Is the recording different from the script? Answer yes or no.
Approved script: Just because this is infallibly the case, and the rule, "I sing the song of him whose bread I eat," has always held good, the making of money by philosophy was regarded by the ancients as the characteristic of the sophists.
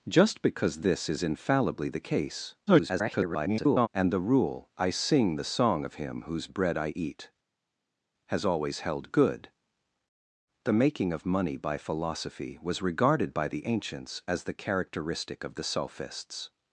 yes